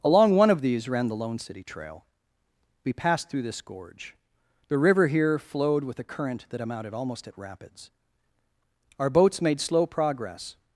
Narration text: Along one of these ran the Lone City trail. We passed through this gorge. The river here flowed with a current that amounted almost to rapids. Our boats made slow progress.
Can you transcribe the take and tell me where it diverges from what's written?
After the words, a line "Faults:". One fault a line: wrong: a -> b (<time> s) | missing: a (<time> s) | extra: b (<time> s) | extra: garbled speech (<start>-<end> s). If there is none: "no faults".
Along one of these ran the Lone City trail. We passed through this gorge. The river here flowed with a current that amounted almost at rapids. Our boats made slow progress.
Faults:
wrong: to -> at (7.3 s)